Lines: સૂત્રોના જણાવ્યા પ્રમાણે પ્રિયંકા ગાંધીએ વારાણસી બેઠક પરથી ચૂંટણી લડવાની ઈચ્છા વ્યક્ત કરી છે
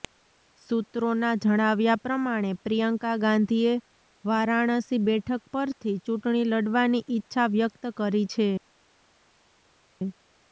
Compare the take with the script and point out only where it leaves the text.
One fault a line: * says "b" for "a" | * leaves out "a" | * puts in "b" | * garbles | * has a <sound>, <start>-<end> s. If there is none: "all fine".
all fine